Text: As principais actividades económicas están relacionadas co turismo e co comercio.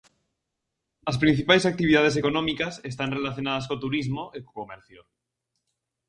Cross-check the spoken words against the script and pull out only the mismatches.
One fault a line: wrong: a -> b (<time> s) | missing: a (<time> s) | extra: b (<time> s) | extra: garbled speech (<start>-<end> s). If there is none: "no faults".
no faults